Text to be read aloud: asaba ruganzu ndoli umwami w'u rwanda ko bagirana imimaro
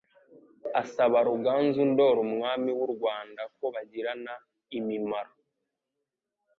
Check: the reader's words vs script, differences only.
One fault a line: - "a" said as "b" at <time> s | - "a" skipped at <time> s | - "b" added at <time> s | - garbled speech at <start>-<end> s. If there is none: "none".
none